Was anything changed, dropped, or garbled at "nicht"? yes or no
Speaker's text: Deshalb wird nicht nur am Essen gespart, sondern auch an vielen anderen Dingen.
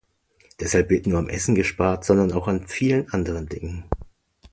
yes